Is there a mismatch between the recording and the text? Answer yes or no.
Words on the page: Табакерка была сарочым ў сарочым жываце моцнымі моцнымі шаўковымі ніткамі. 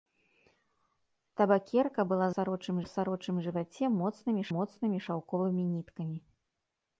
no